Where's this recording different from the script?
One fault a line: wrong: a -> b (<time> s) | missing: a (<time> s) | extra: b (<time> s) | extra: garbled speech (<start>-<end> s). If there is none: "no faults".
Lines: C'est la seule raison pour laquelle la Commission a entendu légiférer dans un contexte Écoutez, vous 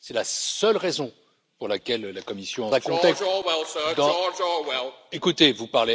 missing: entendu légiférer dans (2.7 s)